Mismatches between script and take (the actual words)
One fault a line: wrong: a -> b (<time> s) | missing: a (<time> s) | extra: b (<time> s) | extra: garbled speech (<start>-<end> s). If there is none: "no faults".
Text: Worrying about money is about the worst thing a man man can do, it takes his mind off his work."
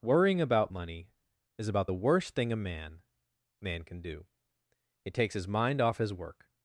no faults